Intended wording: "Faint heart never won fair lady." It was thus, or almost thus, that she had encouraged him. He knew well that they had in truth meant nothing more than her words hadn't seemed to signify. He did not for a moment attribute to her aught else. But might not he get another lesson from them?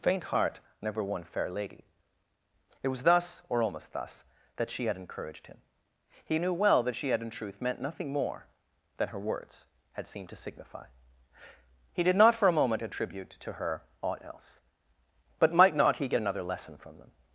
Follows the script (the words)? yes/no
no